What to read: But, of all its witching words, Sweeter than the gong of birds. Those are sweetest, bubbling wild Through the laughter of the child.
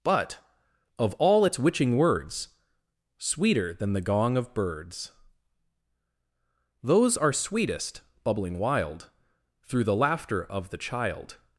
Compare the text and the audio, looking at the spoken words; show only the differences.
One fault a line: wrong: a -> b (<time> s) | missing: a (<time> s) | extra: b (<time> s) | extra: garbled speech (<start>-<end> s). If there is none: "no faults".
no faults